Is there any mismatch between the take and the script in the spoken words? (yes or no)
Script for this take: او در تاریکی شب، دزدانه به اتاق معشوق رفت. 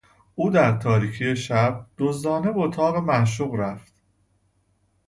no